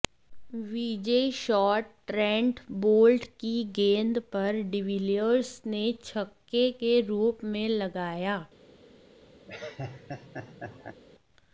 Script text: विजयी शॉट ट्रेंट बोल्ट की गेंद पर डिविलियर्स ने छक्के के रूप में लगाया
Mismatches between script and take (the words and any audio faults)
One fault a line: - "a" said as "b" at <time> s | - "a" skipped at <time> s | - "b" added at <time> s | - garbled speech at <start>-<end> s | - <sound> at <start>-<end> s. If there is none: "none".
- laugh at 9.5-11.0 s